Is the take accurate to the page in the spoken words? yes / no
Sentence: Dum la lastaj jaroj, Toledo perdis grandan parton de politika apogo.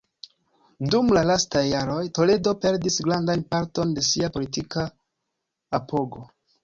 no